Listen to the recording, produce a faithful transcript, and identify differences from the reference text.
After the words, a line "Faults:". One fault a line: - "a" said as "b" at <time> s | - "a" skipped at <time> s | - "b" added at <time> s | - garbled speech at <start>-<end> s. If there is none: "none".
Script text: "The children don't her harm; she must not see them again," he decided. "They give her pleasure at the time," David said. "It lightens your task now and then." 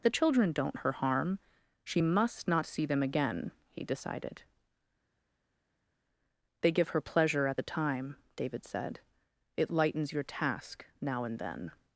"The children don't her harm; she must not see them again," he decided. "They give her pleasure at the time," David said. "It lightens your task now and then."
Faults:
none